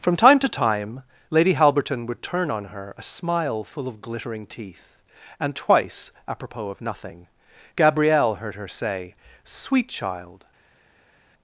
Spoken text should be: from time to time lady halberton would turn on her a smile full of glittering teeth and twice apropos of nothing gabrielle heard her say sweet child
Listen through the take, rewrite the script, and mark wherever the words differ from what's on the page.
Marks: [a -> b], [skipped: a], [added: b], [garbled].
from time to time lady halberton would turn on her a smile full of glittering teeth and twice apropos of nothing gabrielle heard her say sweet child